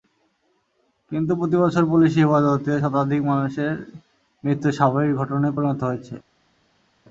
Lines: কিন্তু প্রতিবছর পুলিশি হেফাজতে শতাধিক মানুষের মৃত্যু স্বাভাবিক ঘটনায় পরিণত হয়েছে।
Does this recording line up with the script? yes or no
yes